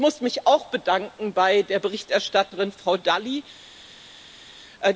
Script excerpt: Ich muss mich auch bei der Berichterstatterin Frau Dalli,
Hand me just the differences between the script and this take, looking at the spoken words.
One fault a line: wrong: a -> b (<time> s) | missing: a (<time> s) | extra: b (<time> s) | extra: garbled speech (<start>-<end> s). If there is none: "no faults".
extra: bedanken (0.7 s)